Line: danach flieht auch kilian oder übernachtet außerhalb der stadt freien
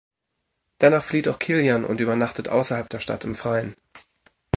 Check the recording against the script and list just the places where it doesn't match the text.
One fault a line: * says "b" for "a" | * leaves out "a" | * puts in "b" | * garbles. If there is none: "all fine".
* says "und" for "oder"
* puts in "im"